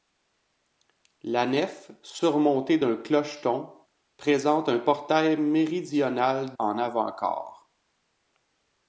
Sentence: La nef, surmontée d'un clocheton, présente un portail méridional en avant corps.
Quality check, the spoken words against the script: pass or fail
pass